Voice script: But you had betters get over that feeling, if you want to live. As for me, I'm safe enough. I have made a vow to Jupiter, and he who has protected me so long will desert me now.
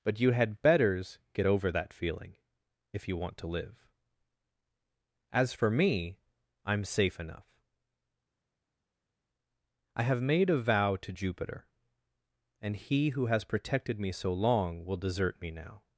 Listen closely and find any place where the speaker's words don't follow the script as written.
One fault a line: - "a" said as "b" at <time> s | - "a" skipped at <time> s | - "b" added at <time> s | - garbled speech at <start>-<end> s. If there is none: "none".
none